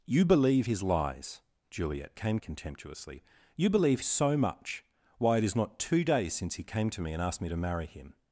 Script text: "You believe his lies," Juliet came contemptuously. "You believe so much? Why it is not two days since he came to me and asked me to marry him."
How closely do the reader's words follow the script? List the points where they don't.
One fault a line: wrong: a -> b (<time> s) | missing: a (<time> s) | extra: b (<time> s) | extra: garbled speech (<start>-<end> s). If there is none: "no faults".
no faults